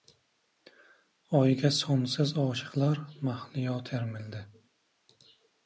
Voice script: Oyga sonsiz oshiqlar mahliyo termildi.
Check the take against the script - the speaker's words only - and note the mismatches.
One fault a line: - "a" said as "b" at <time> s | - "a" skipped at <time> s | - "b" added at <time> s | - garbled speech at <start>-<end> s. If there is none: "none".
none